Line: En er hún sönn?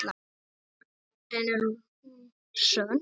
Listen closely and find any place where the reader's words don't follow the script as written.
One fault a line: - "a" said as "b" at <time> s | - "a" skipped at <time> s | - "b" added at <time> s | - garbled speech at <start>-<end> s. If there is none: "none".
none